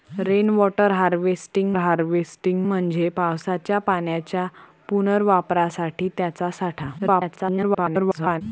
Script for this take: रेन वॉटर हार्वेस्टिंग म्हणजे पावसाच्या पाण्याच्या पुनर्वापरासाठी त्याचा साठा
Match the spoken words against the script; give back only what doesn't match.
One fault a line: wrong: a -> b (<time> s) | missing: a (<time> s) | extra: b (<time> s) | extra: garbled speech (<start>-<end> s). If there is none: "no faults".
extra: हार्वेस्टिंग (1.8 s)
extra: garbled speech (7.0-8.4 s)